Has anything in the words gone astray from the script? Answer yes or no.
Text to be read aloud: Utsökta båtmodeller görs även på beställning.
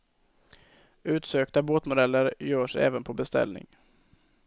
no